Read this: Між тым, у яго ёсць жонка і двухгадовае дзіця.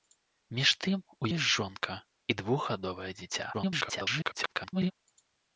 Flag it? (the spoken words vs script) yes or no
yes